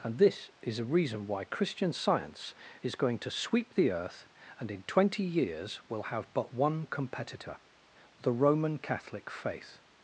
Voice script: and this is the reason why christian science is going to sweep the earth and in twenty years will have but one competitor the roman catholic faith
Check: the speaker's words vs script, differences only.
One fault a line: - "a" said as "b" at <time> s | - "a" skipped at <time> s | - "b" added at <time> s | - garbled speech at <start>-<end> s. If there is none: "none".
- "the" said as "a" at 0.8 s